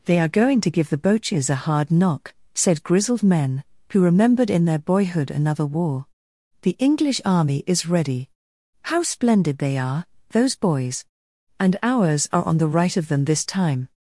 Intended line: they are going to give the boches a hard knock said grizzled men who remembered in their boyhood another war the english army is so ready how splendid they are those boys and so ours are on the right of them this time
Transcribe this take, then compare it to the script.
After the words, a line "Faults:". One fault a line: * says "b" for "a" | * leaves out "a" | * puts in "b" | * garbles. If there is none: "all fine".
they are going to give the boches a hard knock said grizzled men who remembered in their boyhood another war the english army is ready how splendid they are those boys and ours are on the right of them this time
Faults:
* leaves out "so"
* leaves out "so"